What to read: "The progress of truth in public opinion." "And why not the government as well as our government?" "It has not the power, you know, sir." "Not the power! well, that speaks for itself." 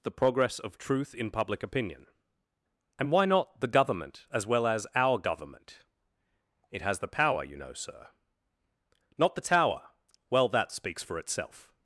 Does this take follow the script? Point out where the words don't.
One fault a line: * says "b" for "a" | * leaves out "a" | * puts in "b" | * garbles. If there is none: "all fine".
* leaves out "not"
* says "tower" for "power"